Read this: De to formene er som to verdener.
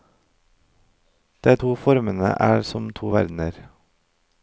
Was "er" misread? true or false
false